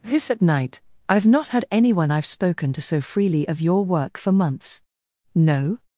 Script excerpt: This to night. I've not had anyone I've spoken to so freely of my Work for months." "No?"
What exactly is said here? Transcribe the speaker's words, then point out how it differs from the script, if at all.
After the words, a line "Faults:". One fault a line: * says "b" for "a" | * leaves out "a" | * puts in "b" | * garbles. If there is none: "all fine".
This at night. I've not had anyone I've spoken to so freely of your Work for months." "No?"
Faults:
* says "at" for "to"
* says "your" for "my"